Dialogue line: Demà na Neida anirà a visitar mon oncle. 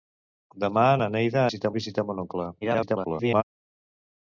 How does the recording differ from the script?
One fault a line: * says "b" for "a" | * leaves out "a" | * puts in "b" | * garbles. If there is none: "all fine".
* says "visitar" for "anirà"
* garbles